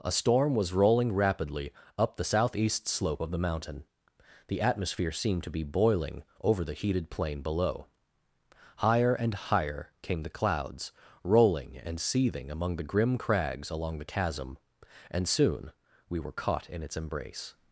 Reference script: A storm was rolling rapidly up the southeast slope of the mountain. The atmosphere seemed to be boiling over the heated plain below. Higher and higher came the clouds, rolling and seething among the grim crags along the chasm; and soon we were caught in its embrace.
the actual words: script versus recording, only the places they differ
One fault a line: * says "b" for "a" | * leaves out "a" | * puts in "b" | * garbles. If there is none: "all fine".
all fine